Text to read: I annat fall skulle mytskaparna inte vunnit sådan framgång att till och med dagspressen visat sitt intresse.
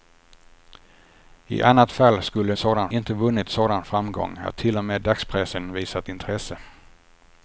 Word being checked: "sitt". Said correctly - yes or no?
no